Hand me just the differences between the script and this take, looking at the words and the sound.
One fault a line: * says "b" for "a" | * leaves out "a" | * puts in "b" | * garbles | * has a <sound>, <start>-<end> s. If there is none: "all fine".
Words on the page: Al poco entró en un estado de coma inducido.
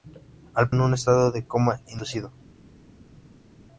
* leaves out "poco entró"